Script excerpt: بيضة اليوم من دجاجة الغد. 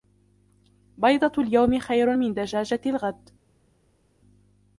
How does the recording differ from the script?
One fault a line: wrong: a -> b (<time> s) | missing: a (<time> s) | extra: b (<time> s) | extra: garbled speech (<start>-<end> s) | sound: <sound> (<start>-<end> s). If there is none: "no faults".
extra: خير (1.8 s)